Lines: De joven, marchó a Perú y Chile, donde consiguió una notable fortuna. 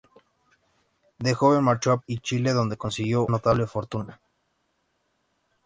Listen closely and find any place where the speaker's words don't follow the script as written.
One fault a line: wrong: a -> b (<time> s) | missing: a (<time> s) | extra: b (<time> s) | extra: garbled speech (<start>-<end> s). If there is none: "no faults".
missing: Perú (2.0 s)
missing: una (3.3 s)